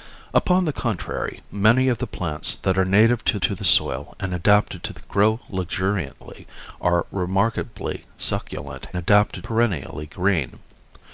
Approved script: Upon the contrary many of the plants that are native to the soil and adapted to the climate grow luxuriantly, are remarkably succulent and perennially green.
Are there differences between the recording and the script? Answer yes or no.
yes